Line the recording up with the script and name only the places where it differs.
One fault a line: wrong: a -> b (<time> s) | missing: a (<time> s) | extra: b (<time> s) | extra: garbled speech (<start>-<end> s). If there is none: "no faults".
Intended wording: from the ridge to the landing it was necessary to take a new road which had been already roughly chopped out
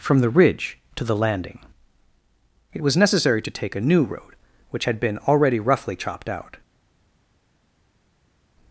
no faults